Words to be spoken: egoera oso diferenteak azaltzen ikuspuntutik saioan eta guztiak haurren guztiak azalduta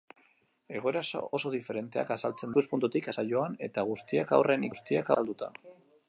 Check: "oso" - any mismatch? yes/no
no